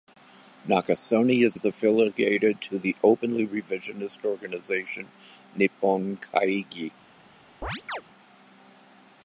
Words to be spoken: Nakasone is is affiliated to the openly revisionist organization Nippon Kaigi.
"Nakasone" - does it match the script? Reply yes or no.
yes